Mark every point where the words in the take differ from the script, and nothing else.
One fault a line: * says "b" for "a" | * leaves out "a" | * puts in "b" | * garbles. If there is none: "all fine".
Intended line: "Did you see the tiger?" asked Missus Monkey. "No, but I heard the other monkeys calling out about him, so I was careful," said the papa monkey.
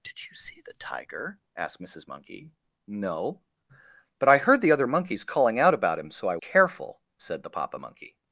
* leaves out "was"